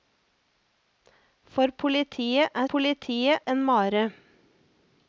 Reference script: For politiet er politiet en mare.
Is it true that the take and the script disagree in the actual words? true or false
false